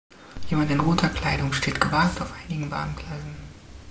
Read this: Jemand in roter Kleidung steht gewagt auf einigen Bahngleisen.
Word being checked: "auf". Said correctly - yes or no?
yes